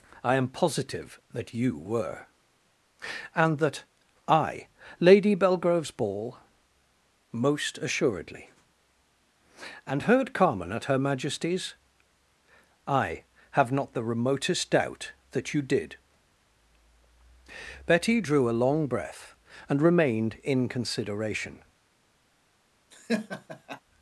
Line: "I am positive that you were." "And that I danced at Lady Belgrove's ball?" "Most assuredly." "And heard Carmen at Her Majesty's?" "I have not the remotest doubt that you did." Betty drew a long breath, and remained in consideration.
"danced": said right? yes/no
no